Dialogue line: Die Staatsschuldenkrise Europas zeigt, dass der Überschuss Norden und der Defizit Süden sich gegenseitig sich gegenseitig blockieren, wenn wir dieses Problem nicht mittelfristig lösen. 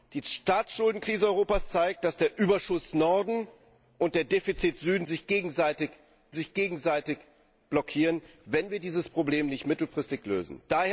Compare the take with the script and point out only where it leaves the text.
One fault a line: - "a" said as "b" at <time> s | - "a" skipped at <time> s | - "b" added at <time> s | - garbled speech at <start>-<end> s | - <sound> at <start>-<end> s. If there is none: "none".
none